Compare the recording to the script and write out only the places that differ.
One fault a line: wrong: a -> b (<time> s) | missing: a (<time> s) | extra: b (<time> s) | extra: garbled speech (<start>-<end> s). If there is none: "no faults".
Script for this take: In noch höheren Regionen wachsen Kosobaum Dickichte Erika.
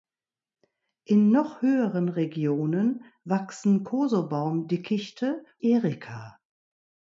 no faults